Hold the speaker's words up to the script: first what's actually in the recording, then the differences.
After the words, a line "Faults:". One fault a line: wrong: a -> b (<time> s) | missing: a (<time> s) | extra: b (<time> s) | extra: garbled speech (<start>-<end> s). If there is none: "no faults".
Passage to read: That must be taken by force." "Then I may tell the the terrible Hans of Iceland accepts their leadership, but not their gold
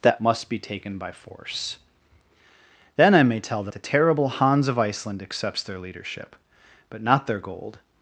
That must be taken by force." "Then I may tell the the terrible Hans of Iceland accepts their leadership, but not their gold
Faults:
no faults